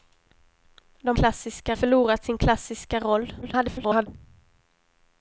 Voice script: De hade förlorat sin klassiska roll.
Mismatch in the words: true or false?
true